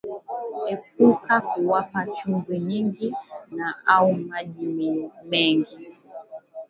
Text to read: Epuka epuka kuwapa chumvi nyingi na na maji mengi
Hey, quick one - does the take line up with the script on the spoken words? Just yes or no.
no